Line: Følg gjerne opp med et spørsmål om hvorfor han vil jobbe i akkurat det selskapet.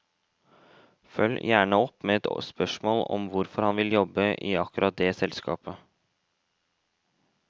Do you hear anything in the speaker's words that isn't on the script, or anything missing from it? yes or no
no